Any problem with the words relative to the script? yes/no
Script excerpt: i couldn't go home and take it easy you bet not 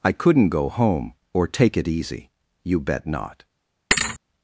yes